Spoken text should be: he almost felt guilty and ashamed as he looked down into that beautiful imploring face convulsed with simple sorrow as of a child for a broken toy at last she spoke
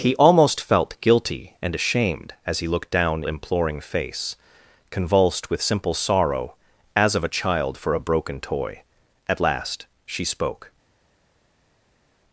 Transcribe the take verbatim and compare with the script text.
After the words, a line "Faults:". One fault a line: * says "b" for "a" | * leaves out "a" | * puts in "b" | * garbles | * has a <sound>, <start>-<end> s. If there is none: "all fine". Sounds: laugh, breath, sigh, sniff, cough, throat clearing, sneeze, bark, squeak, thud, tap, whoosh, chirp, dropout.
he almost felt guilty and ashamed as he looked down imploring face convulsed with simple sorrow as of a child for a broken toy at last she spoke
Faults:
* leaves out "into that beautiful"